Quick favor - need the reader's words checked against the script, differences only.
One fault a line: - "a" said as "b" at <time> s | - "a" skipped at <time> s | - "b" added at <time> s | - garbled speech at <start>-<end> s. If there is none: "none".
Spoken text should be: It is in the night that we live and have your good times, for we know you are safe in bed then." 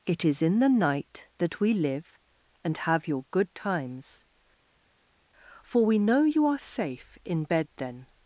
none